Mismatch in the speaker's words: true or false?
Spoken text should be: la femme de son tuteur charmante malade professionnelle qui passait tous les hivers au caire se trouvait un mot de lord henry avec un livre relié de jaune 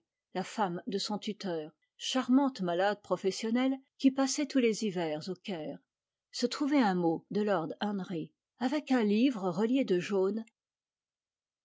false